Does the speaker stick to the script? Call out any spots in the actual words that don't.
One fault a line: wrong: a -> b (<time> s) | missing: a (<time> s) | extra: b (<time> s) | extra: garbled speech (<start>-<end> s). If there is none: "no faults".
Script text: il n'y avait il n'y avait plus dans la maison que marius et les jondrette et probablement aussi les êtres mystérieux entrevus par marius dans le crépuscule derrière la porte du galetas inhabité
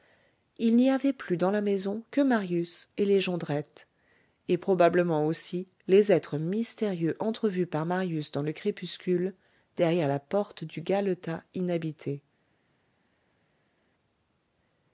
missing: il n'y avait (1.1 s)